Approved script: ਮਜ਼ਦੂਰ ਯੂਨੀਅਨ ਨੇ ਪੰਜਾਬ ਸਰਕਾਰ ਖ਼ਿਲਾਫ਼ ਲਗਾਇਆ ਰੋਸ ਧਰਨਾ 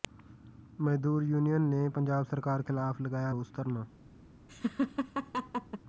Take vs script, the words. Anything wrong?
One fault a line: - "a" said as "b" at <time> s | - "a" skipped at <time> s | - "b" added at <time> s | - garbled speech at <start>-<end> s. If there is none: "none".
none